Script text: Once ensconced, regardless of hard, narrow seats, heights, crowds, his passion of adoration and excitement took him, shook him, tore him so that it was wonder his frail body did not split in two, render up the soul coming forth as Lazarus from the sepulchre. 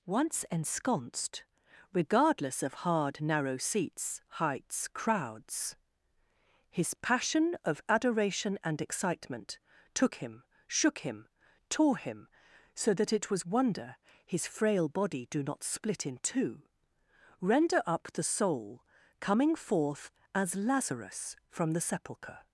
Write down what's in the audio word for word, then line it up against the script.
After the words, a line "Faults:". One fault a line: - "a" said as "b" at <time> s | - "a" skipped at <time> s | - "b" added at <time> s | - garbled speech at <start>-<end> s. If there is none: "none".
Once ensconced, regardless of hard, narrow seats, heights, crowds, his passion of adoration and excitement took him, shook him, tore him so that it was wonder his frail body do not split in two, render up the soul coming forth as Lazarus from the sepulchre.
Faults:
- "did" said as "do" at 15.3 s